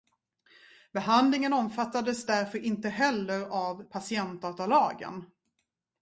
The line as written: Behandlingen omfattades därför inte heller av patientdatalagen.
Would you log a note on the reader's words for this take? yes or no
no